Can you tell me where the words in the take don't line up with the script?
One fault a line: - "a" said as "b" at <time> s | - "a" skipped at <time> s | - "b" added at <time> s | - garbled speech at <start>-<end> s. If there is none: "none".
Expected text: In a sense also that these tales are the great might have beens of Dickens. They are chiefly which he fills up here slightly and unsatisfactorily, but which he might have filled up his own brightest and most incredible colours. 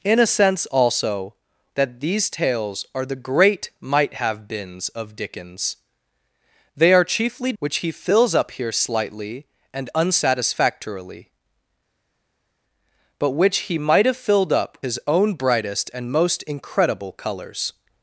none